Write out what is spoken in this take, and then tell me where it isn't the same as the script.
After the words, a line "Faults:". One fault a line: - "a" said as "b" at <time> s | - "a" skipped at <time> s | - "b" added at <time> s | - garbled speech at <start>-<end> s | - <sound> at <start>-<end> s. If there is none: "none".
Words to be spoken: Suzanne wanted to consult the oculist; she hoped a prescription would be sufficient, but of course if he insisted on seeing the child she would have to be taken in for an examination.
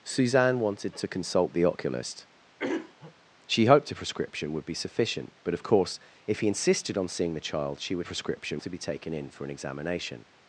Suzanne wanted to consult the oculist; she hoped a prescription would be sufficient, but of course if he insisted on seeing the child she would prescription to be taken in for an examination.
Faults:
- throat clearing at 2.6-3.1 s
- "have" said as "prescription" at 8.0 s